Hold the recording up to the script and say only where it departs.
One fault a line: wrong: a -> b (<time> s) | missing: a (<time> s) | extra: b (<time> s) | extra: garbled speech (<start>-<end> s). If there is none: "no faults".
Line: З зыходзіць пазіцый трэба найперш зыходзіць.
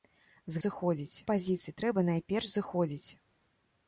no faults